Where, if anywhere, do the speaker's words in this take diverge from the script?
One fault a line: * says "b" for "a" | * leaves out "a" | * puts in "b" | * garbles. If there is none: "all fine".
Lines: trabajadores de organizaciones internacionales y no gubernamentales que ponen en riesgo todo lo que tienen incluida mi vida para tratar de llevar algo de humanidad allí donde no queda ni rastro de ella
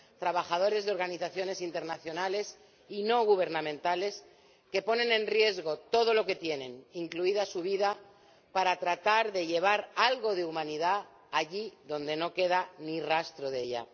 * says "su" for "mi"